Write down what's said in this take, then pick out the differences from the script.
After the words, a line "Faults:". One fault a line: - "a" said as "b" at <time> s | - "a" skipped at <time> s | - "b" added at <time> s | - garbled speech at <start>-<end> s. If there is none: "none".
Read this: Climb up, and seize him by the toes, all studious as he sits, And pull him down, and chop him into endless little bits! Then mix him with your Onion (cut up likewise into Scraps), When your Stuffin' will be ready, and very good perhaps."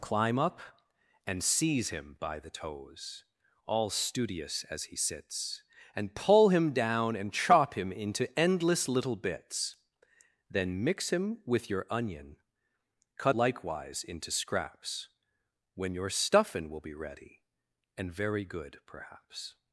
Climb up, and seize him by the toes, all studious as he sits, And pull him down, and chop him into endless little bits! Then mix him with your Onion (cut likewise into Scraps), When your Stuffin' will be ready, and very good perhaps."
Faults:
- "up" skipped at 13.3 s